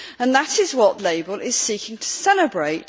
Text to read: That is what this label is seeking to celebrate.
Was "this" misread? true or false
true